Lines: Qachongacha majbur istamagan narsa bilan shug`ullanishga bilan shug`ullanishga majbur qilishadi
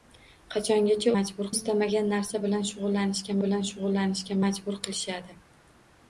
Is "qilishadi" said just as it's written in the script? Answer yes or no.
yes